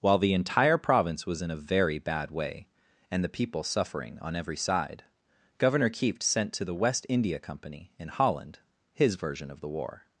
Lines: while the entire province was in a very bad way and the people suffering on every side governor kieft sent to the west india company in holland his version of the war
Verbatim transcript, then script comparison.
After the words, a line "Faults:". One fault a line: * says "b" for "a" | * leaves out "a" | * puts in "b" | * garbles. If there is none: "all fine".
while the entire province was in a very bad way and the people suffering on every side governor kieft sent to the west india company in holland his version of the war
Faults:
all fine